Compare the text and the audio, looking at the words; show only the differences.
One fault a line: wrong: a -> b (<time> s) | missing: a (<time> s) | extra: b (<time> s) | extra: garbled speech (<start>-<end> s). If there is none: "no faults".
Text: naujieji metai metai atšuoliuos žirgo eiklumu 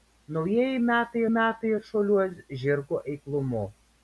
no faults